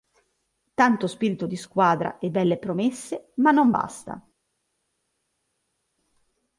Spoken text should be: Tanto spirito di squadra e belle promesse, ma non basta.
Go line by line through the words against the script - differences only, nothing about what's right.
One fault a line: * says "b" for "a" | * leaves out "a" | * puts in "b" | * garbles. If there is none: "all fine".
all fine